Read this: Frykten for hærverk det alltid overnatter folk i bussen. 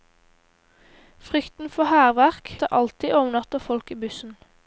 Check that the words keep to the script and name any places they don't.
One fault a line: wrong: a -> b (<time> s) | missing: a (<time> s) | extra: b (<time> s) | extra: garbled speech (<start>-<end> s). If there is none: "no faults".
no faults